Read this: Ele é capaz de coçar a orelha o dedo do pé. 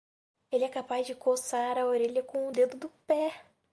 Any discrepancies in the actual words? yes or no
yes